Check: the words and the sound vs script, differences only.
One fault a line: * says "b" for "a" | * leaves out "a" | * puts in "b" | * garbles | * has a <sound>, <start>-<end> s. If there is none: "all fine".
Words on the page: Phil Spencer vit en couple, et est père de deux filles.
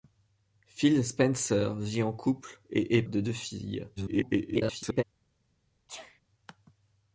* leaves out "père"
* garbles
* has a sneeze, 5.9-6.2 s